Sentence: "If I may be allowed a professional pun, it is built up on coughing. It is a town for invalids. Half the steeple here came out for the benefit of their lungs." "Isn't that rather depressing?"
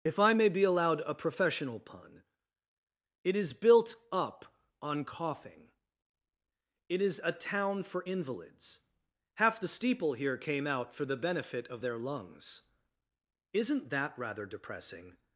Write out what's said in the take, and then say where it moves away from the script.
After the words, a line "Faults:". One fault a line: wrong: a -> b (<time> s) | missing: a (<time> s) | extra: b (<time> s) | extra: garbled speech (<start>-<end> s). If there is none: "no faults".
"If I may be allowed a professional pun, it is built up on coughing. It is a town for invalids. Half the steeple here came out for the benefit of their lungs." "Isn't that rather depressing?"
Faults:
no faults